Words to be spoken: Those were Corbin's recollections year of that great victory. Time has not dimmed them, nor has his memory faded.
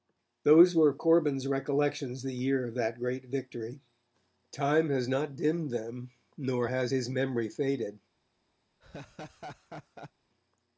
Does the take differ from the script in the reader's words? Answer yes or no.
yes